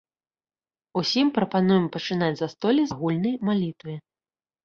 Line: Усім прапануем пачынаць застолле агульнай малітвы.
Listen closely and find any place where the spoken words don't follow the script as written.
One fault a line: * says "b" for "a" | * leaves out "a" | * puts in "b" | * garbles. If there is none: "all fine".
all fine